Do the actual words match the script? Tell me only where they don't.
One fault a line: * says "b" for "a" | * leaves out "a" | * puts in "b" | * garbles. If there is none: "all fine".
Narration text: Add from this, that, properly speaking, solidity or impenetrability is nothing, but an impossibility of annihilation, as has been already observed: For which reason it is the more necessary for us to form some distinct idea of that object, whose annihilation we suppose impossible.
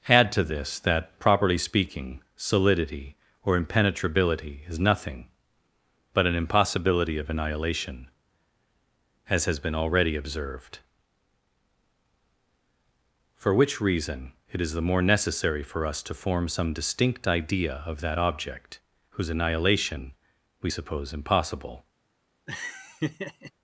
* says "to" for "from"